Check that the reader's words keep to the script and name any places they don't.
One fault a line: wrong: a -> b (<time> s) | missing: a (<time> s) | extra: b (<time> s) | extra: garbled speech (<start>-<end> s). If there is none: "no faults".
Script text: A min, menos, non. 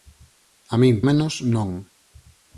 no faults